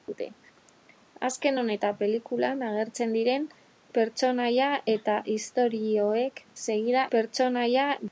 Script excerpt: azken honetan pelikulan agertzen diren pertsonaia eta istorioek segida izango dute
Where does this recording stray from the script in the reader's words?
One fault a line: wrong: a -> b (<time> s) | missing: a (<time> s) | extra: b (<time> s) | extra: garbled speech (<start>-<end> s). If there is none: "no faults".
wrong: izango -> pertsonaia (7.1 s)